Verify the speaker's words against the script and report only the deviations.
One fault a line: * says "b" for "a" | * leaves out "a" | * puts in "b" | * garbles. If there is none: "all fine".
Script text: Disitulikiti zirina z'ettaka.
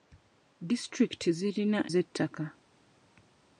all fine